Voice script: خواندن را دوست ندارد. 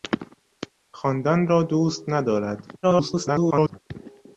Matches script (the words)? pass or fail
fail